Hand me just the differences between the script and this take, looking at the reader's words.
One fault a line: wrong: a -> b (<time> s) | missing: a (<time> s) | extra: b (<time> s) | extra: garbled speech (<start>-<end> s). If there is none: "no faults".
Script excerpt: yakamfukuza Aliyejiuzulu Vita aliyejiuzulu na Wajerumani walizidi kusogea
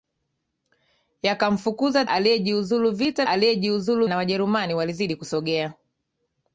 no faults